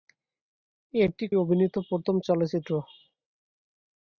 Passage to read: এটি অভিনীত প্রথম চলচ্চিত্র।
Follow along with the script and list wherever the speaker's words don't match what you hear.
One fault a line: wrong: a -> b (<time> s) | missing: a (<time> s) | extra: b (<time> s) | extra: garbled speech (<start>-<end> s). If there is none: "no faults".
no faults